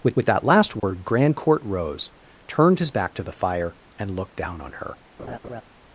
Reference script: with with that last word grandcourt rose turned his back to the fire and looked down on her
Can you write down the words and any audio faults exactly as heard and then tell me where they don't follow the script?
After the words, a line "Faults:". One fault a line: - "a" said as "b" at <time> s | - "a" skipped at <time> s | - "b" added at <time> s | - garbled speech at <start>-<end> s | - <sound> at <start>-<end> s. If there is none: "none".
with with that last word grandcourt rose turned his back to the fire and looked down on her
Faults:
- dropout at 0.8-0.8 s
- laugh at 5.2-5.6 s